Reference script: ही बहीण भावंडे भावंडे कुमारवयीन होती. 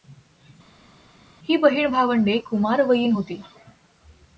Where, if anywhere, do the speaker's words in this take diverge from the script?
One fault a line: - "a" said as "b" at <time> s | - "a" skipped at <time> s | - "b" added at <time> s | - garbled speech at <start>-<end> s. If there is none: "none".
- "भावंडे" skipped at 2.4 s